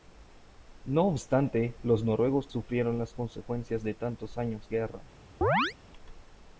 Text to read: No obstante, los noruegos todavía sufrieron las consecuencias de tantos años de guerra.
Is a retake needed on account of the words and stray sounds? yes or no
yes